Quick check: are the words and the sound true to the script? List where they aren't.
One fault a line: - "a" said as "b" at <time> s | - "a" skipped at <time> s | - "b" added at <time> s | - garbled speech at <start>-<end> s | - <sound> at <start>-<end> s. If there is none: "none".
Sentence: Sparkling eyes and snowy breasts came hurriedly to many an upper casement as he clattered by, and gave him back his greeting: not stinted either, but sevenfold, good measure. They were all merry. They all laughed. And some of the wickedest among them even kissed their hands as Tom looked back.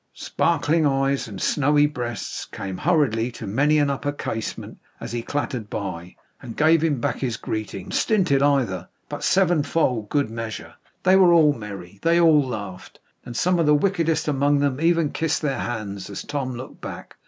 - "not" skipped at 7.9 s